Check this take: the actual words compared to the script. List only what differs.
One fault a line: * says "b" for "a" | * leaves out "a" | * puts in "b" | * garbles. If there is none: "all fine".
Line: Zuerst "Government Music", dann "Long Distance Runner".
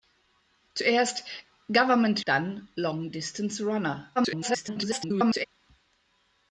* leaves out "Music"
* garbles